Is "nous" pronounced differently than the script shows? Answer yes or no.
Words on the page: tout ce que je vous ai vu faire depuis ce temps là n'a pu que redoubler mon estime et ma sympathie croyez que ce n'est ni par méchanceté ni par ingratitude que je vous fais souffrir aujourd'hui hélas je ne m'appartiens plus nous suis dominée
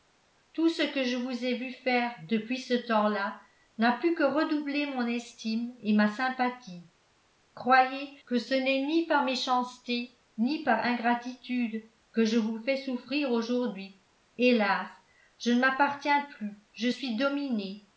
yes